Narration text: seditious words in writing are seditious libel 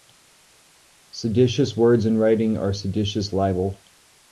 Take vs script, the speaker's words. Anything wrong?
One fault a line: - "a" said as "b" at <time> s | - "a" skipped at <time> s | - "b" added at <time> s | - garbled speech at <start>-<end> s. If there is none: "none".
none